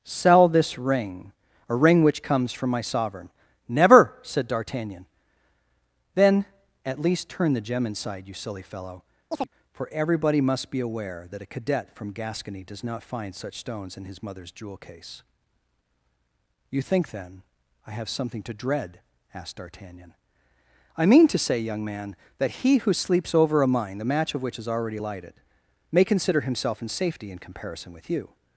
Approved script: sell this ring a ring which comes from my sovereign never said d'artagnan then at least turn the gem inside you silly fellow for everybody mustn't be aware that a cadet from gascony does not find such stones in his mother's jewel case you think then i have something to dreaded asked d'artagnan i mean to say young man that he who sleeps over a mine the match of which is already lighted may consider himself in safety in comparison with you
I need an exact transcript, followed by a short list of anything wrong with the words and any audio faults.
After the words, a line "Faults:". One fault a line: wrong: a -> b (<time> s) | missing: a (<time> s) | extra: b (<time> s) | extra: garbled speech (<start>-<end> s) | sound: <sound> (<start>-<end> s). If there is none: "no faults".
sell this ring a ring which comes from my sovereign never said d'artagnan then at least turn the gem inside you silly fellow for everybody must be aware that a cadet from gascony does not find such stones in his mother's jewel case you think then i have something to dread asked d'artagnan i mean to say young man that he who sleeps over a mine the match of which is already lighted may consider himself in safety in comparison with you
Faults:
sound: chirp (9.3-9.5 s)
wrong: mustn't -> must (10.4 s)
wrong: dreaded -> dread (18.5 s)